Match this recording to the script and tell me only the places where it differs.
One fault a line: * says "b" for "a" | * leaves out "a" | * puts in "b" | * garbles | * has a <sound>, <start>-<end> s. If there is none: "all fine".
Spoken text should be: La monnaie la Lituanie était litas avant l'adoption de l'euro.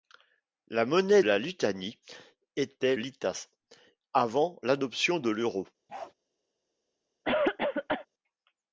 * has a bark, 5.9-6.1 s
* has a cough, 7.2-8.1 s